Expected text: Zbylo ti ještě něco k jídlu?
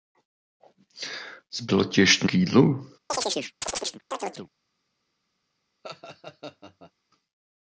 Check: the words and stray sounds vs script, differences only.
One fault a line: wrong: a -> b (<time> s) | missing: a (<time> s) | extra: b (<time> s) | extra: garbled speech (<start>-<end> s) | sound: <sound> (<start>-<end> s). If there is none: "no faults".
missing: něco (2.3 s)
sound: chirp (3.1-4.5 s)
sound: laugh (5.8-6.9 s)